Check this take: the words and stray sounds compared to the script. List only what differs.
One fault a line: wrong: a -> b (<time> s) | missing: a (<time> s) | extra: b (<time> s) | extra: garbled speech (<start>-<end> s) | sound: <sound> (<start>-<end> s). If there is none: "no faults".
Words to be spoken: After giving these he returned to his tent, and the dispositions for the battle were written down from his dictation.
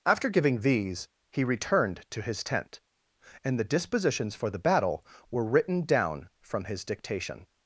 no faults